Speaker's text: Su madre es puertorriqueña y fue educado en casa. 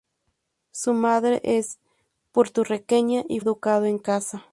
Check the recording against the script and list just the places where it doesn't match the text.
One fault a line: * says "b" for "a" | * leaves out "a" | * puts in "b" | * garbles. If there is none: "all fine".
* leaves out "fue"